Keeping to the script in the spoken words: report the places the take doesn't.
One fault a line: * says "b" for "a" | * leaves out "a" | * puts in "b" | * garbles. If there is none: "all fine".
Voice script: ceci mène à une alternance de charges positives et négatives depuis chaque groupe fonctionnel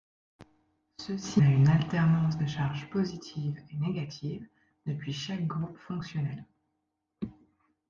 * leaves out "mène"